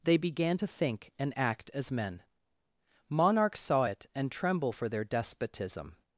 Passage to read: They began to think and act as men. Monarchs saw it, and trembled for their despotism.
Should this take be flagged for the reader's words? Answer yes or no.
yes